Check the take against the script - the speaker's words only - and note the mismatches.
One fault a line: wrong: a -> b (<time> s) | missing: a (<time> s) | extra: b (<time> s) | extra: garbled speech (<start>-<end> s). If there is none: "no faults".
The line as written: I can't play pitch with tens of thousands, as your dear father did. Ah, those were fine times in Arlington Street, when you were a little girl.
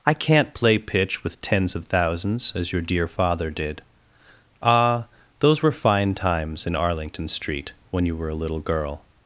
no faults